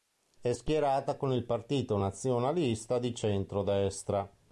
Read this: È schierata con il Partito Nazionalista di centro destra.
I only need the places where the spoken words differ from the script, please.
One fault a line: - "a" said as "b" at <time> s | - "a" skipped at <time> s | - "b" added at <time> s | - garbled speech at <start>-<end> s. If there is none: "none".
none